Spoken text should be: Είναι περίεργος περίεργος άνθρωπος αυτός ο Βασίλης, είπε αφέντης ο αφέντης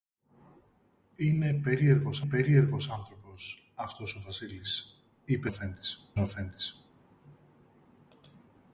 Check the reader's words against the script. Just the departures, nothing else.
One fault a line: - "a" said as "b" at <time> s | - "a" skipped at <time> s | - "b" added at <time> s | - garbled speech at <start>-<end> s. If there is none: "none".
none